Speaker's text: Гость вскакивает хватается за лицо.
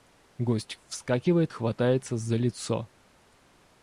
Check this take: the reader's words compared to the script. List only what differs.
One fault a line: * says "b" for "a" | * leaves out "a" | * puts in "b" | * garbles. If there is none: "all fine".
all fine